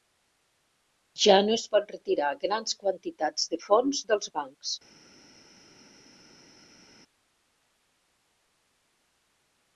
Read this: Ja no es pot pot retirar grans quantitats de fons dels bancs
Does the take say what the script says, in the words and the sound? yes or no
no